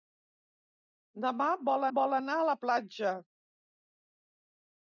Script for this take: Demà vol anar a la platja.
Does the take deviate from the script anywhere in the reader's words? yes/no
yes